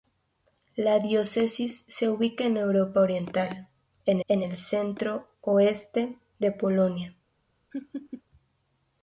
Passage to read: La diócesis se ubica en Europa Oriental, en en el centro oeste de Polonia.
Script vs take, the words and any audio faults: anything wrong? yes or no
yes